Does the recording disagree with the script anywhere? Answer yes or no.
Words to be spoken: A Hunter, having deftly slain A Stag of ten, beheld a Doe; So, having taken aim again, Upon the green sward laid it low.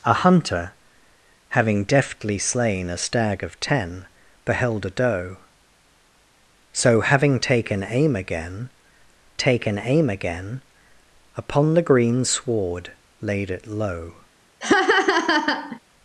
yes